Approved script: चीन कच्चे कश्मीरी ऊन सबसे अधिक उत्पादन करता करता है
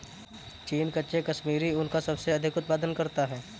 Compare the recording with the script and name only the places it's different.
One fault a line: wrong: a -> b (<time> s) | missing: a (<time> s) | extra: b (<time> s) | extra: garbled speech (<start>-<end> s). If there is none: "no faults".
extra: का (1.9 s)
missing: करता (3.3 s)